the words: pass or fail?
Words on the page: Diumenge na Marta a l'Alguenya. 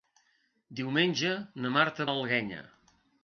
pass